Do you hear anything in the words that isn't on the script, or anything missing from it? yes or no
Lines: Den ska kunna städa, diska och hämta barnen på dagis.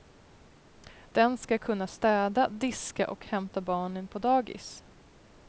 no